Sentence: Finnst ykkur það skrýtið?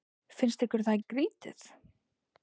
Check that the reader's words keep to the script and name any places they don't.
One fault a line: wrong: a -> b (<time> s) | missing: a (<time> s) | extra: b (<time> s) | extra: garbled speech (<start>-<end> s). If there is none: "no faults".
no faults